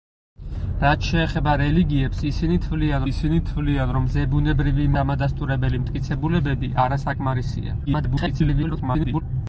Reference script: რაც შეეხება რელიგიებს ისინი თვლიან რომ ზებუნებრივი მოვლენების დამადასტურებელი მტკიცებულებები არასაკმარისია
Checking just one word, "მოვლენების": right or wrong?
wrong